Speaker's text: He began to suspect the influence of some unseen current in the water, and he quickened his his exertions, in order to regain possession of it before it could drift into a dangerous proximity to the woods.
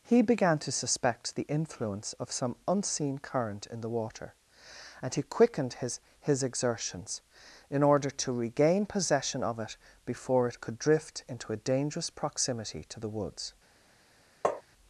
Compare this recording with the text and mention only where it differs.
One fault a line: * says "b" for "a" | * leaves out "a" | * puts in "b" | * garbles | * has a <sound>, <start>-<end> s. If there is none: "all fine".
* has a tap, 14.4-14.6 s